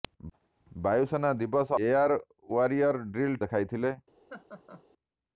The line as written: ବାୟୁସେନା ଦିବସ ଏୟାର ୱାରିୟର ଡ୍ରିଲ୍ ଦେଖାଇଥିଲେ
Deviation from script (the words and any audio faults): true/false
true